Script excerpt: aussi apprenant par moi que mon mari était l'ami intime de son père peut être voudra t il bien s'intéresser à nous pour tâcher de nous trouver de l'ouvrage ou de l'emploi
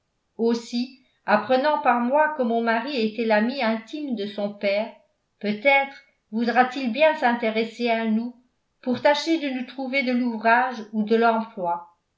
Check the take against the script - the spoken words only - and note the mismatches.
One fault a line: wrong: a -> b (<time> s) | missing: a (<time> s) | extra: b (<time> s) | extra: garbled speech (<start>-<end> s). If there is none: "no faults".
no faults